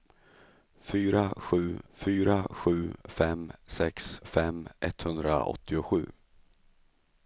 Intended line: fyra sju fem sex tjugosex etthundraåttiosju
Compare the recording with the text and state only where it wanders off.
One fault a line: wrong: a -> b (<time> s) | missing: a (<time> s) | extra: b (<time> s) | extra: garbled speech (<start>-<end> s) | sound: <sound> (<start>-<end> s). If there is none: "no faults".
extra: fyra sju (1.9 s)
wrong: tjugosex -> fem (4.2 s)